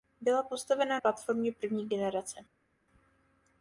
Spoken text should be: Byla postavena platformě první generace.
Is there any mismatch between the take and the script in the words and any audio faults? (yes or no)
no